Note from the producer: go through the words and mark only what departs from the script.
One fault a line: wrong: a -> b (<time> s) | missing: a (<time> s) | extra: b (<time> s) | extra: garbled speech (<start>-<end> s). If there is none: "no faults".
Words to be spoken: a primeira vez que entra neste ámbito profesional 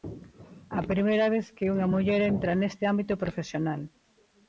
extra: unha muller (1.7 s)